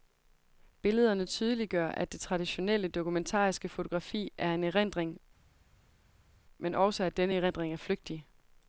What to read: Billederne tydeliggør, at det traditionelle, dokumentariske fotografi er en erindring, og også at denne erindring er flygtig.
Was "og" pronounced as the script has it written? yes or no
no